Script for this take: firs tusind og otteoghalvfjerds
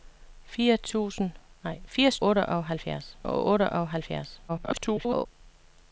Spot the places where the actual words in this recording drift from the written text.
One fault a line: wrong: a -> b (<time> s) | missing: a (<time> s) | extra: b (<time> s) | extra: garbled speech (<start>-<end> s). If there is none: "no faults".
wrong: tusind -> otteoghalvfjerds (2.2 s)
extra: garbled speech (4.5-5.3 s)